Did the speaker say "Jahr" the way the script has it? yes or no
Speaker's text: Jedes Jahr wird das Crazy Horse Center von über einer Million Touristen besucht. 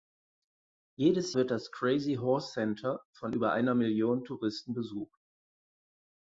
no